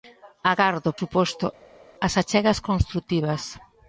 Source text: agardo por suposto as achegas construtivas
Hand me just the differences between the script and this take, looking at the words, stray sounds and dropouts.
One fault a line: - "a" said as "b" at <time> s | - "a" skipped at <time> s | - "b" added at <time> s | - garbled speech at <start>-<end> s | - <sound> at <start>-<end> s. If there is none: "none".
- "por" skipped at 0.9 s